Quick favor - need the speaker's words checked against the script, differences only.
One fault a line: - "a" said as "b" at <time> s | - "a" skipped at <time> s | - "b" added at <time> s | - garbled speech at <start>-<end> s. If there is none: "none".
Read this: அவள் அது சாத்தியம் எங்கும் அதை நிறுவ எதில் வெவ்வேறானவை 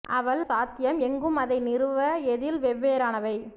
- "அது" skipped at 0.4 s